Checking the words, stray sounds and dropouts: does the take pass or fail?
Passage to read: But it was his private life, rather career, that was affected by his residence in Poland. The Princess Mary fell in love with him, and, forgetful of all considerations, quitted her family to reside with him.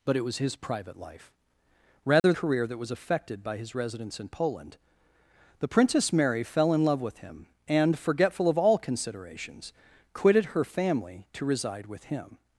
fail